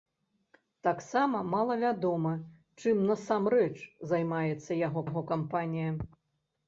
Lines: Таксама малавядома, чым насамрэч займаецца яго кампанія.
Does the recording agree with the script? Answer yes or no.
no